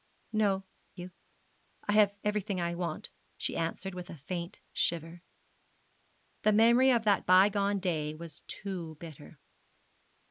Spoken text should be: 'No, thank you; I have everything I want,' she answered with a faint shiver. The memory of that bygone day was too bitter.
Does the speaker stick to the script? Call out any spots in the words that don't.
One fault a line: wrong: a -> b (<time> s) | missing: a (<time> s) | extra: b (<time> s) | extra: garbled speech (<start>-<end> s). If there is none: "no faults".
missing: thank (0.6 s)